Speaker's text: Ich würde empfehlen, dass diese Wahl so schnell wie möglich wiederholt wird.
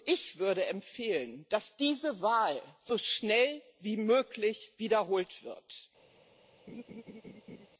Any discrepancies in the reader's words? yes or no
no